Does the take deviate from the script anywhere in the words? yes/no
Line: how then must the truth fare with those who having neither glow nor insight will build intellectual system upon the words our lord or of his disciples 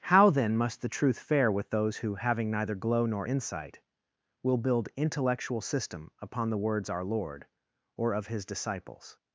no